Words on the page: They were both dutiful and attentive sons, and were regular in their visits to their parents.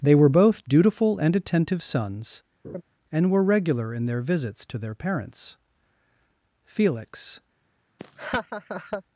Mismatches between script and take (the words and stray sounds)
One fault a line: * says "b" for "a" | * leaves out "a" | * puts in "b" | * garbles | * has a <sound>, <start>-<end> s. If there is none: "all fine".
* has a laugh, 2.6-2.8 s
* puts in "Felix"
* has a laugh, 8.0-9.0 s